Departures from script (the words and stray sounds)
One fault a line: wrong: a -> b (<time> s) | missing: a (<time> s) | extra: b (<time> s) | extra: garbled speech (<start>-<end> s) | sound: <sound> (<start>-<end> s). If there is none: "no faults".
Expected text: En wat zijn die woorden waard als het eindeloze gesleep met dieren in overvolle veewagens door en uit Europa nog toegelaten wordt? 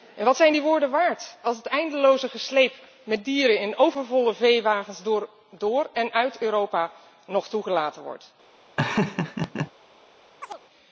sound: laugh (8.8-9.7 s)
sound: chirp (10.4-10.6 s)